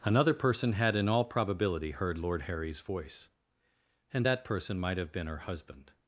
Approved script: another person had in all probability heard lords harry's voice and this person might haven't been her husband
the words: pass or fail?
fail